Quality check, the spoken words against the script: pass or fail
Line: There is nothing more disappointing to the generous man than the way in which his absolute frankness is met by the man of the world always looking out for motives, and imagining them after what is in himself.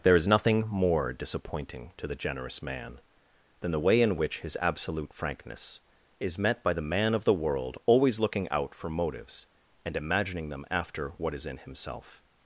pass